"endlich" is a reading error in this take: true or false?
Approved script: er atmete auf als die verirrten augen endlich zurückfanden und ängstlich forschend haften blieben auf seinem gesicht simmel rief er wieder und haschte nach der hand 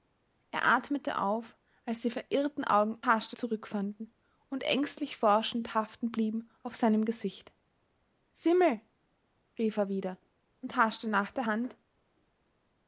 true